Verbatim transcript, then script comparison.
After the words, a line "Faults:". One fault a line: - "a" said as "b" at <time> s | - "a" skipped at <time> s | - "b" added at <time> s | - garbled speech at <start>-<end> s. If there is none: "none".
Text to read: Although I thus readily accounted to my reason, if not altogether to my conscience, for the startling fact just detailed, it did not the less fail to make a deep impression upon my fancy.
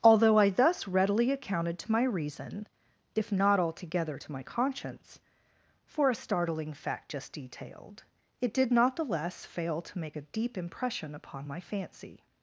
Although I thus readily accounted to my reason, if not altogether to my conscience, for a startling fact just detailed, it did not the less fail to make a deep impression upon my fancy.
Faults:
- "the" said as "a" at 6.1 s